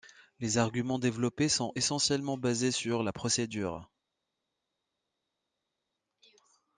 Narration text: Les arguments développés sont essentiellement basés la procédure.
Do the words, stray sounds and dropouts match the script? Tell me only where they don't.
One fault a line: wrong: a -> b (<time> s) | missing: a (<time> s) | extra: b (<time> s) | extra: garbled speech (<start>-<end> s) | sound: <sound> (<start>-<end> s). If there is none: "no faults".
extra: sur (2.7 s)